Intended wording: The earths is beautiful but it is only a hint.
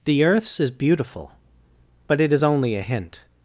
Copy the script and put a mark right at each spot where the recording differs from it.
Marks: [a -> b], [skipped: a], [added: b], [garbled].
The earths is beautiful but it is only a hint.